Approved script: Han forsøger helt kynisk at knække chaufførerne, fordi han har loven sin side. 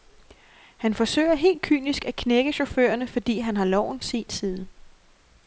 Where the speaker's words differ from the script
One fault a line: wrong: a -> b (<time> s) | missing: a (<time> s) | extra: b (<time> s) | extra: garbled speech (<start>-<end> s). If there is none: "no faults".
no faults